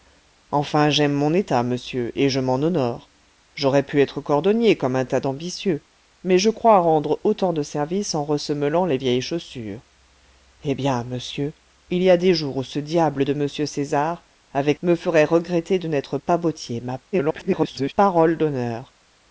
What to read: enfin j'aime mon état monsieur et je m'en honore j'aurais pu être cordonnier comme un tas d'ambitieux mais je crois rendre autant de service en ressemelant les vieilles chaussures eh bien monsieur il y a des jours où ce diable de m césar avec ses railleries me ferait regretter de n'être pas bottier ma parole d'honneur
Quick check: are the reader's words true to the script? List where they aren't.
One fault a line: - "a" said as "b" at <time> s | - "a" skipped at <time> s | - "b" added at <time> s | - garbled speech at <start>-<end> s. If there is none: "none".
- "ses railleries" skipped at 14.8 s
- garbled speech at 17.1-17.9 s